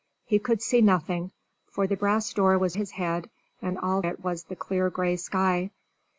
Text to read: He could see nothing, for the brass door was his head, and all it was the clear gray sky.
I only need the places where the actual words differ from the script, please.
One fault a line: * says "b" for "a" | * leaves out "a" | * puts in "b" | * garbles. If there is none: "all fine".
all fine